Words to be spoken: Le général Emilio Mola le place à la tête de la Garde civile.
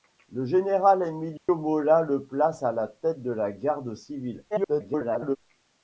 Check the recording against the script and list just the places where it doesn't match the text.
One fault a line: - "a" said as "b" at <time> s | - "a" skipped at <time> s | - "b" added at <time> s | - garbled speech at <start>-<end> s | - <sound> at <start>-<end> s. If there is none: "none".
- dropout at 1.4-1.5 s
- garbled speech at 4.5-5.4 s